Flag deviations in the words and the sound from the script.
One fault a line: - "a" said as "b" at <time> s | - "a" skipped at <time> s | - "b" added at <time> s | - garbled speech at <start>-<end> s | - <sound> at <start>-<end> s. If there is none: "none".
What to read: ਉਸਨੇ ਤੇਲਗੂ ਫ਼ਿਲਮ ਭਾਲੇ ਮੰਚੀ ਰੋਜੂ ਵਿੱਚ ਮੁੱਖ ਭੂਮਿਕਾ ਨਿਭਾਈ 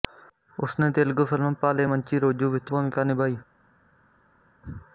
- "ਮੁੱਖ" skipped at 2.7 s